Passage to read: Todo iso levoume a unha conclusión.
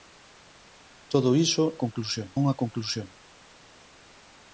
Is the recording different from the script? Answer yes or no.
yes